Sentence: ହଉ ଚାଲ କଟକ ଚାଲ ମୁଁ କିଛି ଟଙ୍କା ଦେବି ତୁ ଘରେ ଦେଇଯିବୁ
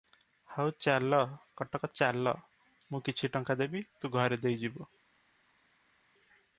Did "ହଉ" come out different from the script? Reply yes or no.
no